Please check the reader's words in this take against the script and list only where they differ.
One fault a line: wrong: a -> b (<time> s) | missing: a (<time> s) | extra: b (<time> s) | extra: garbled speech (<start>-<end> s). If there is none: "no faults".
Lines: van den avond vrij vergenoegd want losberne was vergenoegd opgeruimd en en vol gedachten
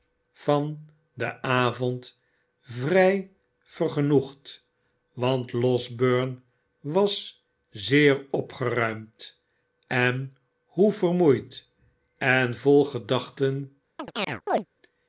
wrong: vergenoegd -> zeer (7.7 s)
extra: hoe vermoeid (10.6 s)